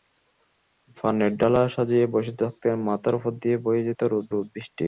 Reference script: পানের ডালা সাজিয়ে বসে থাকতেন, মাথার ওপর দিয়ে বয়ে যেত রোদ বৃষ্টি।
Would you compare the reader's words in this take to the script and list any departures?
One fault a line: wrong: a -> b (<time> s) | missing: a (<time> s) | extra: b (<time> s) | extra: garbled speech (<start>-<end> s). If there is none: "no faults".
extra: রোদ (4.3 s)